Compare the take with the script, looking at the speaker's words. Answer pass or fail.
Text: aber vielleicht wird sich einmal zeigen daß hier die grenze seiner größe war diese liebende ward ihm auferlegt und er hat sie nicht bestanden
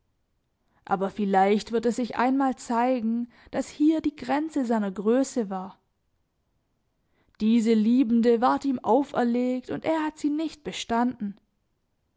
fail